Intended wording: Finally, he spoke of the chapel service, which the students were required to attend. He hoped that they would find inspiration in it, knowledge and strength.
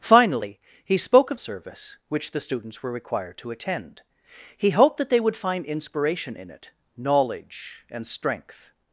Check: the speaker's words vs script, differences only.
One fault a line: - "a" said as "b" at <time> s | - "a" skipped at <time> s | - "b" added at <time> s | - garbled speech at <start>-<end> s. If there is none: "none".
- "the chapel" skipped at 1.4 s